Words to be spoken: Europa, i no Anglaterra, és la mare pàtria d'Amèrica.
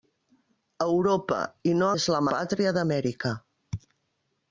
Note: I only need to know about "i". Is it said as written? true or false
true